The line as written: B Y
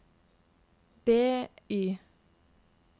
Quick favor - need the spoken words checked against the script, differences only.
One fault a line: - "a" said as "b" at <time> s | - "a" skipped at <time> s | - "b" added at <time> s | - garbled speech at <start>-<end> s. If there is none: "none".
none